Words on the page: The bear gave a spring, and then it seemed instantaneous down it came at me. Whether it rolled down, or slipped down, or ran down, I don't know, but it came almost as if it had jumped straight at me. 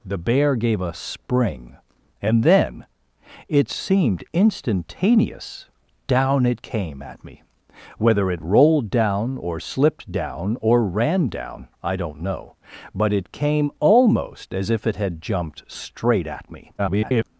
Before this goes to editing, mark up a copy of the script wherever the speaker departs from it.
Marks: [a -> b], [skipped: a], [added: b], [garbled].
The bear gave a spring, and then it seemed instantaneous down it came at me. Whether it rolled down, or slipped down, or ran down, I don't know, but it came almost as if it had jumped straight at me. [garbled]